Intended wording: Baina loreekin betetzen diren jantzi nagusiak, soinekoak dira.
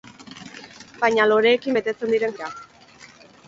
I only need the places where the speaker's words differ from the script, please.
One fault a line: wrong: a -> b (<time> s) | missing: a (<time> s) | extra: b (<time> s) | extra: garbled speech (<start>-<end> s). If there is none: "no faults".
missing: jantzi nagusiak soinekoak (2.4 s)